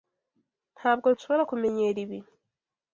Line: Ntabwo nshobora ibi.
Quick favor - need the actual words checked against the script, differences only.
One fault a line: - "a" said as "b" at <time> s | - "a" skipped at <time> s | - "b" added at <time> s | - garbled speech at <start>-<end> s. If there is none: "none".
- "kumenyera" added at 1.5 s